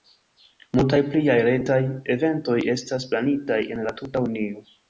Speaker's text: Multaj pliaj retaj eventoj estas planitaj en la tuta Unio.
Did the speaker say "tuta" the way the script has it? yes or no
yes